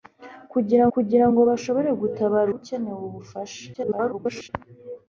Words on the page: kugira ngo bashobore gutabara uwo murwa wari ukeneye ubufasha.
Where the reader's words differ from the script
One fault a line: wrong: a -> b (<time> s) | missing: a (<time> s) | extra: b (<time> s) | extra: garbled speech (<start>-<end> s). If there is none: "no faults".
extra: kugira (0.9 s)
missing: uwo murwa wari (2.5 s)
extra: garbled speech (3.7-4.5 s)